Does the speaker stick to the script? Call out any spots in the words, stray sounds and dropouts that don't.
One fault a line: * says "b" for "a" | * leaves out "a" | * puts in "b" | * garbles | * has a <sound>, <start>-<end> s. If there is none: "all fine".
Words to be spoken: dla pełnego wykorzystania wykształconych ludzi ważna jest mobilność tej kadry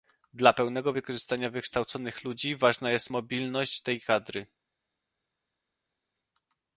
all fine